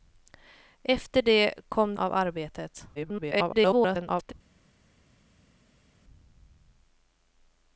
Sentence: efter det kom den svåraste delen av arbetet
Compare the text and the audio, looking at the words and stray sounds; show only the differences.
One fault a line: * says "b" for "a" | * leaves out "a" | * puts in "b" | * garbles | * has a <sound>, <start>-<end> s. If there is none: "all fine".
* leaves out "den svåraste delen"
* garbles